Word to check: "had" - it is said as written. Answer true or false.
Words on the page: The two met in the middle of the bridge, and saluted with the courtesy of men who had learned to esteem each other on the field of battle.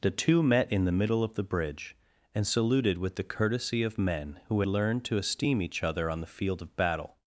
false